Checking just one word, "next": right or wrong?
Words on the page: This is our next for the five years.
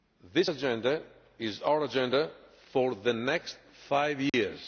wrong